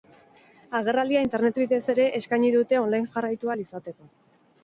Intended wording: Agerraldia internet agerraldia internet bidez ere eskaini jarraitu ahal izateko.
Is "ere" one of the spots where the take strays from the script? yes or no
no